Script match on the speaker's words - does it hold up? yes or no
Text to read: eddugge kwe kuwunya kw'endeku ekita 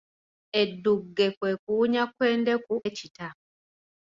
yes